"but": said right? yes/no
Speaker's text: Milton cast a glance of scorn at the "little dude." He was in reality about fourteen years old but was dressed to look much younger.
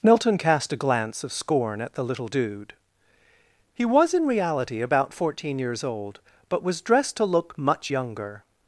yes